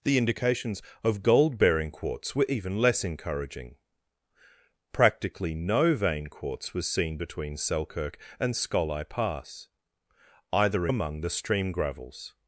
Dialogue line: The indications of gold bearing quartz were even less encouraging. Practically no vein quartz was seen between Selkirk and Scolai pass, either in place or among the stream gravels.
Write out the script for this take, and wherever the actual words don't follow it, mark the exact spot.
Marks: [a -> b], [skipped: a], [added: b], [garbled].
The indications of gold bearing quartz were even less encouraging. Practically no vein quartz was seen between Selkirk and Scolai pass, either [skipped: in place or] among the stream gravels.